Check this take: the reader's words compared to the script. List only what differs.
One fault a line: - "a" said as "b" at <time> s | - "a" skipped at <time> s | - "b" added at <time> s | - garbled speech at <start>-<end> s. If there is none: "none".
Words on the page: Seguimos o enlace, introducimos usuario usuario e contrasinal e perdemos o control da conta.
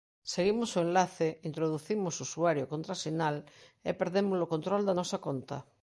- "usuario" skipped at 2.6 s
- "nosa" added at 5.0 s